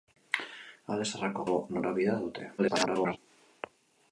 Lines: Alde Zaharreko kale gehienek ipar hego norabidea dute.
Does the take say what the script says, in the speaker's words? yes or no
no